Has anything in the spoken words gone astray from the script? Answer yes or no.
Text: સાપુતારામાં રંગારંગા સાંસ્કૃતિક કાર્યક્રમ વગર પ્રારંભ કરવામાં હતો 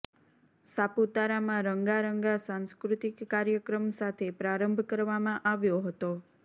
yes